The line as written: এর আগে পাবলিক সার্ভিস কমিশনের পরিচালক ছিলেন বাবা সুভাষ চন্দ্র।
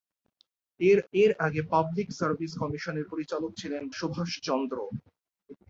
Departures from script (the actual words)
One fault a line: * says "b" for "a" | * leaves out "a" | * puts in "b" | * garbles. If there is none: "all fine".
* puts in "এর"
* leaves out "বাবা"